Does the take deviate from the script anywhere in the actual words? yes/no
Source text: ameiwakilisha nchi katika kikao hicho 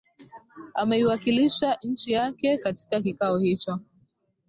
yes